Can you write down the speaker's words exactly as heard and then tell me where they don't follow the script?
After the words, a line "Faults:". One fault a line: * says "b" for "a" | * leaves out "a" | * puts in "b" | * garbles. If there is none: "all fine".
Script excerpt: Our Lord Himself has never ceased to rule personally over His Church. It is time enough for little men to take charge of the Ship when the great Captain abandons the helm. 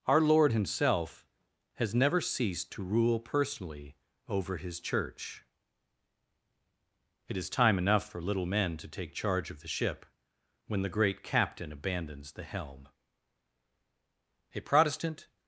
Our Lord Himself has never ceased to rule personally over His Church. It is time enough for little men to take charge of the Ship when the great Captain abandons the helm. A Protestant
Faults:
* puts in "A Protestant"